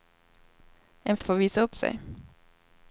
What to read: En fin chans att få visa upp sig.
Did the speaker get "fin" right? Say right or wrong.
wrong